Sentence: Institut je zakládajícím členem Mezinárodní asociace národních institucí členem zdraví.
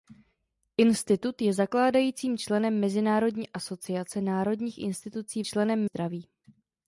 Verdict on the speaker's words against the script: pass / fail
pass